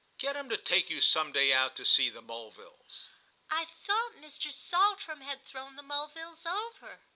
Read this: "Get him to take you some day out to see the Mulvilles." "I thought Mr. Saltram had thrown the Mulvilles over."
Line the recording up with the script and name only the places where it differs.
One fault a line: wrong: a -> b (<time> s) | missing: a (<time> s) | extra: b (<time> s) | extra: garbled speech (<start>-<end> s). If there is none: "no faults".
no faults